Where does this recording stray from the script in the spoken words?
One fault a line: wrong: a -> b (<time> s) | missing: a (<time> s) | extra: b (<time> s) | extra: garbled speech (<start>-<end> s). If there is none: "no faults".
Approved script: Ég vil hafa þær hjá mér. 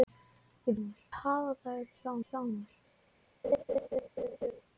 wrong: vil -> mér (0.8 s)
extra: hjá (2.3 s)